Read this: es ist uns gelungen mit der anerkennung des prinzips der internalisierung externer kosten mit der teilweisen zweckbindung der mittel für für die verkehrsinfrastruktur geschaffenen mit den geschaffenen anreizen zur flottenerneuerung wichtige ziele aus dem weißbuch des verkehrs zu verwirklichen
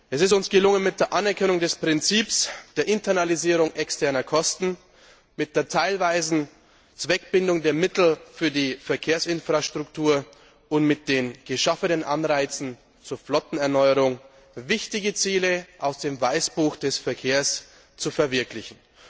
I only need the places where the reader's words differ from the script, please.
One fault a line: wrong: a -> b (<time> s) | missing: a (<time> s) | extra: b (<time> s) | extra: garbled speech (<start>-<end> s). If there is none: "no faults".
missing: für (8.5 s)
wrong: geschaffenen -> und (10.7 s)